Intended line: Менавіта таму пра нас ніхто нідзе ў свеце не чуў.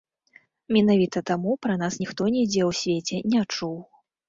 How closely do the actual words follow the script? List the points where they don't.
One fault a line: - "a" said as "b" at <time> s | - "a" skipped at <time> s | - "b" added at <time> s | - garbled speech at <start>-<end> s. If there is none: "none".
none